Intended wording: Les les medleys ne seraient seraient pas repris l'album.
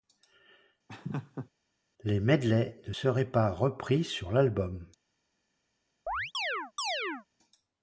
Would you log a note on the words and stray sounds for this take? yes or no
yes